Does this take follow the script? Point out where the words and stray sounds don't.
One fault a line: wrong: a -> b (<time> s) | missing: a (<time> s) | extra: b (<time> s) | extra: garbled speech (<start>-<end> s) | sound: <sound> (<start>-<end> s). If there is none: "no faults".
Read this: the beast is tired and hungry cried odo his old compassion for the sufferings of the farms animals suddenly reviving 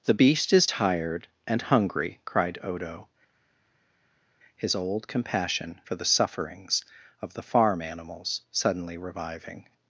wrong: farms -> farm (7.4 s)